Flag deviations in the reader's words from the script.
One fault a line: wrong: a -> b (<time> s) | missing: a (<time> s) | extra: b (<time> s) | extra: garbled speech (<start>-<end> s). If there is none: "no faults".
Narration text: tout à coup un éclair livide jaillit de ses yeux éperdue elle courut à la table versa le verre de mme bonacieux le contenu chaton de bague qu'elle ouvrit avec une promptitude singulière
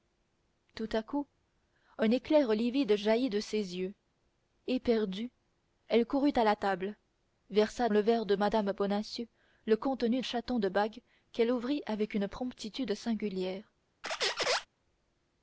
no faults